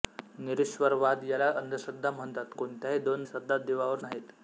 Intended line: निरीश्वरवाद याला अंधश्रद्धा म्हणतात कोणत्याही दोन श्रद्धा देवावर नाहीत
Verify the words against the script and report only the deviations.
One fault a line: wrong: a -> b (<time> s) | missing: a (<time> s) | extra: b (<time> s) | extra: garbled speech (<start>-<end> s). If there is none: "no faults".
no faults